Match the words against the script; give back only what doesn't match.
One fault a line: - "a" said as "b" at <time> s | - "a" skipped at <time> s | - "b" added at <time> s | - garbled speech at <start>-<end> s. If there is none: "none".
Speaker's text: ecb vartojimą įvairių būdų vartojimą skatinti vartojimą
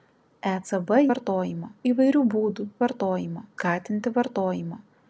none